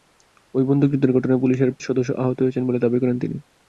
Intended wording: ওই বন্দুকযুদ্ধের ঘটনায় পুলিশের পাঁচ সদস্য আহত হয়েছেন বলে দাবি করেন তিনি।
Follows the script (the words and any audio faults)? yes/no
no